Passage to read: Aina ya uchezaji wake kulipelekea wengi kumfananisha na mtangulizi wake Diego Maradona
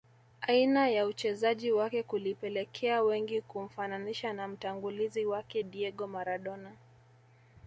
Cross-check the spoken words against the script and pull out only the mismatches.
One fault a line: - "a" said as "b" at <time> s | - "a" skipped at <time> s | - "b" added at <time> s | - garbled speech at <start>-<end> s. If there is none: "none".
none